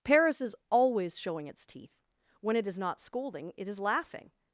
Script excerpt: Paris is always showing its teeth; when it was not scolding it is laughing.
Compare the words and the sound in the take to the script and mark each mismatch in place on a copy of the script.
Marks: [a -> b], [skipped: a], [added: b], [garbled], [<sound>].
Paris is always showing its teeth; when it [was -> is] not scolding it is laughing.